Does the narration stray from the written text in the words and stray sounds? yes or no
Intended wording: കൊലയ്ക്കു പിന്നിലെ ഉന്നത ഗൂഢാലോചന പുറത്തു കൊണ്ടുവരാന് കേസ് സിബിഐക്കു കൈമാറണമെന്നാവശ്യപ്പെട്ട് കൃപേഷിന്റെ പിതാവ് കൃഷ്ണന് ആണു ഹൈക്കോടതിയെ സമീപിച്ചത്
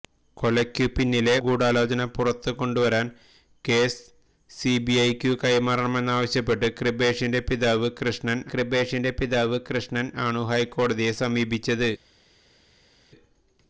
yes